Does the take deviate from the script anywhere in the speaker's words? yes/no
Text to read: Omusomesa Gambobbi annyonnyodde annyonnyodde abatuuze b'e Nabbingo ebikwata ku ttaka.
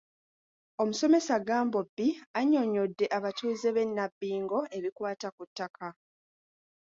yes